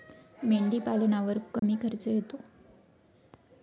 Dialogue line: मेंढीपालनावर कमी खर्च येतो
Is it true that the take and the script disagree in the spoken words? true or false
false